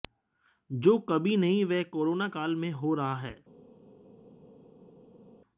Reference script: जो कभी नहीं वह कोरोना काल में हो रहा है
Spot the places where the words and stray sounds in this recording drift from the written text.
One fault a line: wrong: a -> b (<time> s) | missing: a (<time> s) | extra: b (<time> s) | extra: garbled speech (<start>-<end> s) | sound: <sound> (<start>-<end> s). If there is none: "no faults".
no faults